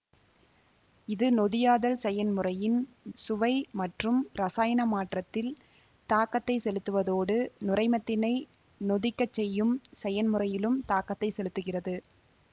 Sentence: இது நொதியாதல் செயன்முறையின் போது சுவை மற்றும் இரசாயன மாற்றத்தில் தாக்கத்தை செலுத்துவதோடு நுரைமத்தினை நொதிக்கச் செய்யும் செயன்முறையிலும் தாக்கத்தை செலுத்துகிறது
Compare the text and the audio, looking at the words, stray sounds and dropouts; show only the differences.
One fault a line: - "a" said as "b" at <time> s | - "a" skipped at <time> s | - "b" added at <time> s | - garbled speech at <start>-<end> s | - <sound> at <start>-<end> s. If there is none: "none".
- "போது" skipped at 2.8 s